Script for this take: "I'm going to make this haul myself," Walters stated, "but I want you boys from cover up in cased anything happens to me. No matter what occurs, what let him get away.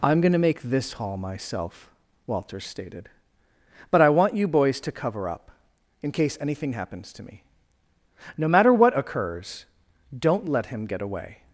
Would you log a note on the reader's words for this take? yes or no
yes